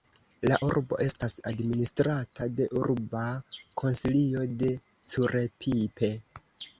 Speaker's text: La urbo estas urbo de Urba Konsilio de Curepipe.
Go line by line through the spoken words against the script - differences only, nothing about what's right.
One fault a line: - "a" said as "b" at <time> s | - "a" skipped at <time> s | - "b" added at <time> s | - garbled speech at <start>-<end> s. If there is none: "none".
- "urbo" said as "administrata" at 1.5 s